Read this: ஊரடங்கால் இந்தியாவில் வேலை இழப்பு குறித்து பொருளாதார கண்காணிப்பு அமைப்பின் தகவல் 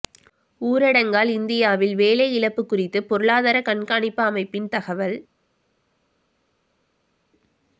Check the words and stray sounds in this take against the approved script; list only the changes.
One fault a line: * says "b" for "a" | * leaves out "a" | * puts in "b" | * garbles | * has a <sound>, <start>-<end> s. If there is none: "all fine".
all fine